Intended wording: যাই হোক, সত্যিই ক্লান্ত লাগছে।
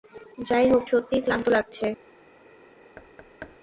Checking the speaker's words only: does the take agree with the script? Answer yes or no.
yes